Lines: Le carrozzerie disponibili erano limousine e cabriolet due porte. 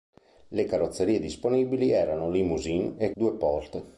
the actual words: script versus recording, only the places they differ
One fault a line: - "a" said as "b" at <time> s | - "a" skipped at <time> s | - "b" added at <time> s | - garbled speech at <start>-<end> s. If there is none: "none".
- "cabriolet" skipped at 3.1 s